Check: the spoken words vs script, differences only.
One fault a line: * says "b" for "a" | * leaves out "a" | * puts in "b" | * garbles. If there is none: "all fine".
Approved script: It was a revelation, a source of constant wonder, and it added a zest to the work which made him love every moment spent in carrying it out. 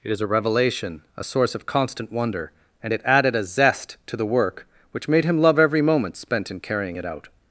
* says "is" for "was"